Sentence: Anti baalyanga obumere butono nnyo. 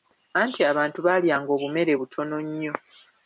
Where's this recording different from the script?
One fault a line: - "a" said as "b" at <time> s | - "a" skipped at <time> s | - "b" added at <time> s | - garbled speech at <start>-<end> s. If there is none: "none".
- "abantu" added at 0.7 s